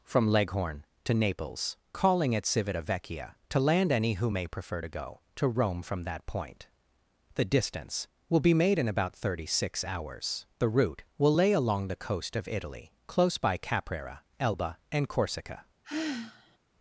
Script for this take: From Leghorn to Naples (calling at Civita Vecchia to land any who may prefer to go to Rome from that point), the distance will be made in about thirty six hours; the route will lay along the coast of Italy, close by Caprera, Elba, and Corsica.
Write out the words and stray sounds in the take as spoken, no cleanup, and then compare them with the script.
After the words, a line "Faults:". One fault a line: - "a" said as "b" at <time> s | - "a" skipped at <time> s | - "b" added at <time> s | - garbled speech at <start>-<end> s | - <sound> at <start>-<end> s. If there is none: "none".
From Leghorn to Naples (calling at Civita Vecchia to land any who may prefer to go to Rome from that point), the distance will be made in about thirty six hours; the route will lay along the coast of Italy, close by Caprera, Elba, and Corsica.
Faults:
- sigh at 15.8-16.6 s